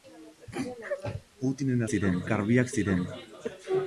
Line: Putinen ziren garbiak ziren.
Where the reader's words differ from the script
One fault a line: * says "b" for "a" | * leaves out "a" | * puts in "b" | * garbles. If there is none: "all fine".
all fine